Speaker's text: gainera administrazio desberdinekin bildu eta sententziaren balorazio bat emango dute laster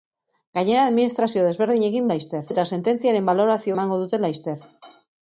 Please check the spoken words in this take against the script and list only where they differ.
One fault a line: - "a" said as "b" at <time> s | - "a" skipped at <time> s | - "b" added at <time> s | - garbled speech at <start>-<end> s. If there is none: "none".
- "bildu" said as "laster" at 2.1 s
- "bat" skipped at 3.8 s